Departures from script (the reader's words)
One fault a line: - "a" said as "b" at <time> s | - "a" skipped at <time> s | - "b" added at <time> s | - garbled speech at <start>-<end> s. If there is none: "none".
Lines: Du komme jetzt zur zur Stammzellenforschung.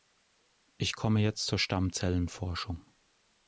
- "Du" said as "Ich" at 0.8 s
- "zur" skipped at 1.6 s